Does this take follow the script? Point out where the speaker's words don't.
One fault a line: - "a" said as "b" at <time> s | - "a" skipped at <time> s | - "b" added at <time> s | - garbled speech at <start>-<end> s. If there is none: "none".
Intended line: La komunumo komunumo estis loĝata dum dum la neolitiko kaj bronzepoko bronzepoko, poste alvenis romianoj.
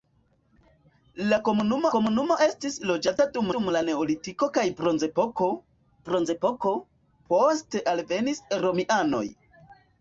none